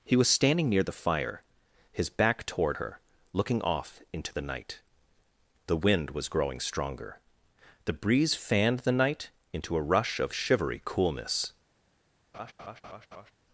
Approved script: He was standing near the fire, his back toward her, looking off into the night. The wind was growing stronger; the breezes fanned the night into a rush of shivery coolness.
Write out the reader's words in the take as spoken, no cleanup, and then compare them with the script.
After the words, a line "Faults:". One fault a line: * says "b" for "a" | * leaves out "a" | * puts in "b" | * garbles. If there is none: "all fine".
He was standing near the fire, his back toward her, looking off into the night. The wind was growing stronger; the breeze fanned the night into a rush of shivery coolness.
Faults:
* says "breeze" for "breezes"